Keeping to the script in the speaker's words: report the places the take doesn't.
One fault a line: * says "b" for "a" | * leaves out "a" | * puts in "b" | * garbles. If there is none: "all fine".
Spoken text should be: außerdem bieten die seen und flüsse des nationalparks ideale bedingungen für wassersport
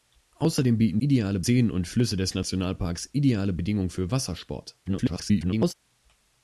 * says "ideale" for "die"
* garbles